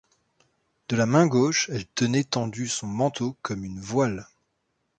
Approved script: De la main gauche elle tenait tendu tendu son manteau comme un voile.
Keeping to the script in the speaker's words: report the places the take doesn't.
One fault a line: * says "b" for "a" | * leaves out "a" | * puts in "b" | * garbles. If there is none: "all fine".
* leaves out "tendu"
* says "une" for "un"